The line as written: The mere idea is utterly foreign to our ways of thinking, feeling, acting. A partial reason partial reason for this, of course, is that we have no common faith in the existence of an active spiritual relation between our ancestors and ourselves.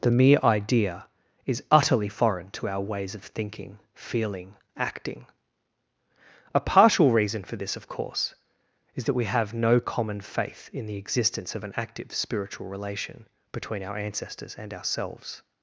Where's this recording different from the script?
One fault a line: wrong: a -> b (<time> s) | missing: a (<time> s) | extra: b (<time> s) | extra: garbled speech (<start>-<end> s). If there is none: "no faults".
missing: partial reason (7.4 s)